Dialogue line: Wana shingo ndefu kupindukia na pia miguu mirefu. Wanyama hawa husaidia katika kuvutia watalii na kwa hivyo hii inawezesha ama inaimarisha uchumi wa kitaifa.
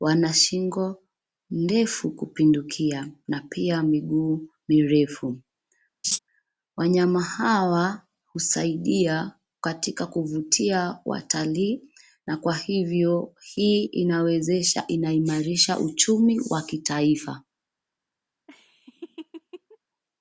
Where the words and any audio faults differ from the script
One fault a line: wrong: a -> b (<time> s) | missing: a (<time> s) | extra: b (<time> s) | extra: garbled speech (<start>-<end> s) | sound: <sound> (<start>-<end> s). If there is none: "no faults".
sound: laugh (6.0-6.2 s)
missing: ama (14.9 s)
sound: laugh (18.5-19.8 s)